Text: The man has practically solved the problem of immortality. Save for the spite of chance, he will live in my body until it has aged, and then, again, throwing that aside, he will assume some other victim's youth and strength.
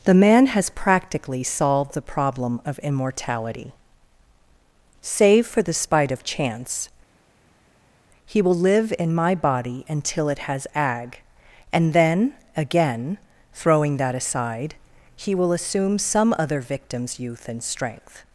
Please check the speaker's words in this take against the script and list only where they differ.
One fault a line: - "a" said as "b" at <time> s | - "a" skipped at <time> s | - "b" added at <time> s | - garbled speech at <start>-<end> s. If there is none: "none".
- "aged" said as "ag" at 10.7 s